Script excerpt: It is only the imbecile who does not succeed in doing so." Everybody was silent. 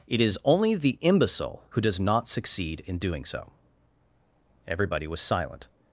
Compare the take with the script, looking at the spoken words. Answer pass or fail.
pass